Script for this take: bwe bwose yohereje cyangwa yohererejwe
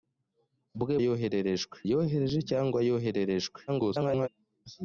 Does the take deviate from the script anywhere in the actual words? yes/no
yes